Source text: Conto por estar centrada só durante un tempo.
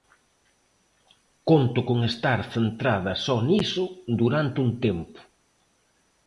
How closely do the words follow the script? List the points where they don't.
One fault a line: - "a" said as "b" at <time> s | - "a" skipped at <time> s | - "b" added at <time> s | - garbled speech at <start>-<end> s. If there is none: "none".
- "por" said as "con" at 1.9 s
- "niso" added at 3.5 s